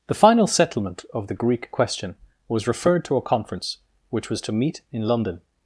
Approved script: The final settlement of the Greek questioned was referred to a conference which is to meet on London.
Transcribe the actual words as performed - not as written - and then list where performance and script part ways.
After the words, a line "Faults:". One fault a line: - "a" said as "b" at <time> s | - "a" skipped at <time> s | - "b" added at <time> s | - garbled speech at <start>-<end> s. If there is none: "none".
The final settlement of the Greek question was referred to a conference which was to meet in London.
Faults:
- "questioned" said as "question" at 1.7 s
- "is" said as "was" at 4.3 s
- "on" said as "in" at 4.9 s